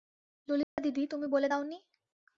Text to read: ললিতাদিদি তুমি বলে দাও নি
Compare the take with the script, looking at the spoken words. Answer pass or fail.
pass